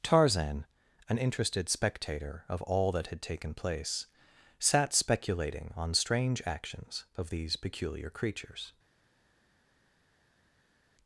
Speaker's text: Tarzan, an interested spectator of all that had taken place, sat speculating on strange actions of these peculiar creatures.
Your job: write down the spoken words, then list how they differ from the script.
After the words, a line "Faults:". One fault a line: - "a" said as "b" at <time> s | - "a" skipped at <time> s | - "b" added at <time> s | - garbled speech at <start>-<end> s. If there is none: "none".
Tarzan, an interested spectator of all that had taken place, sat speculating on strange actions of these peculiar creatures.
Faults:
none